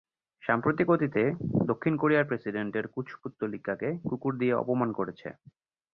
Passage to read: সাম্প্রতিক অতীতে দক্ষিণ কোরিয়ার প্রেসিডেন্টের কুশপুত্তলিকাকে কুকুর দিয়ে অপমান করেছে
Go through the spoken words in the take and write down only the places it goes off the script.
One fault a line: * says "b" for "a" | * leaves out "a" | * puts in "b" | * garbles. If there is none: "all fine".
all fine